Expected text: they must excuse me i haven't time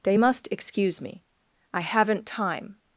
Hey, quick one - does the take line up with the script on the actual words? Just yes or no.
yes